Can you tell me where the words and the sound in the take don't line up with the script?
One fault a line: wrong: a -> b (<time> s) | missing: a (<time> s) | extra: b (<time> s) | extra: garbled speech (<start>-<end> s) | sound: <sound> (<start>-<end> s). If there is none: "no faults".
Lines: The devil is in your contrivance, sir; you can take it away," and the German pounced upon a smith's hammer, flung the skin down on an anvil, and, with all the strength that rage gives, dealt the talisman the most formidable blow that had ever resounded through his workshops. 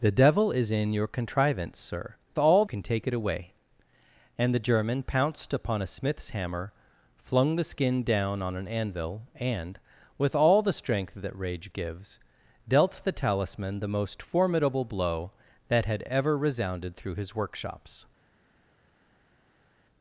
wrong: you -> all (2.4 s)